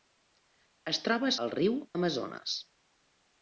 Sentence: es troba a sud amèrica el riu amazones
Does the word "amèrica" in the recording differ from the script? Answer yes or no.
yes